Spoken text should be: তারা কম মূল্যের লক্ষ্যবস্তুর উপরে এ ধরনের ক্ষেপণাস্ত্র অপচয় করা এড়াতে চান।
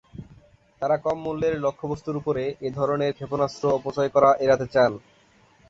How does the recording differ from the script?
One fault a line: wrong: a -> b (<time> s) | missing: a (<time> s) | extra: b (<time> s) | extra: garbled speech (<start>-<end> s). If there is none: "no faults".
no faults